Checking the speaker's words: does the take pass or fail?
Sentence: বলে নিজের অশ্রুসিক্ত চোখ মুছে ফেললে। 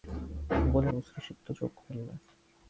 fail